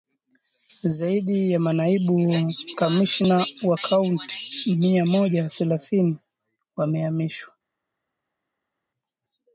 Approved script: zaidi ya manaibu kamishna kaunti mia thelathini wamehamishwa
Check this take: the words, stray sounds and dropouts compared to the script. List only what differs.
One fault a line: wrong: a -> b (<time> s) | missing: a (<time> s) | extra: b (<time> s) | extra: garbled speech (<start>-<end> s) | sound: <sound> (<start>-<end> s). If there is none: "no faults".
extra: wa (3.6 s)
extra: moja (5.1 s)